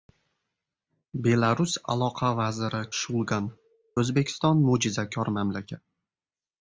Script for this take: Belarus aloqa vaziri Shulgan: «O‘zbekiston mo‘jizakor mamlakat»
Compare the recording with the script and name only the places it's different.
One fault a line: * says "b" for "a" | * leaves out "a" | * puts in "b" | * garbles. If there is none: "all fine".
all fine